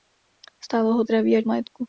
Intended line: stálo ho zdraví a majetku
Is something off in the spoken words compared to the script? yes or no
no